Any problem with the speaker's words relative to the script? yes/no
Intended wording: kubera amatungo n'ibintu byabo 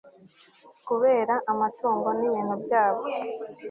no